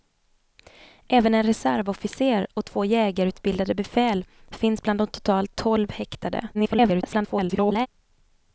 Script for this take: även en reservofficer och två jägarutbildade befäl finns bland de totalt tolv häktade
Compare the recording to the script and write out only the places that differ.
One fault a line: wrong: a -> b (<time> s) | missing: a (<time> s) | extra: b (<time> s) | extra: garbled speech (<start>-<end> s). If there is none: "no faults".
extra: garbled speech (6.5-7.9 s)